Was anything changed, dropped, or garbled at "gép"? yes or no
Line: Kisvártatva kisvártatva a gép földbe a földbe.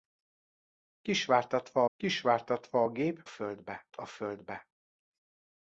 no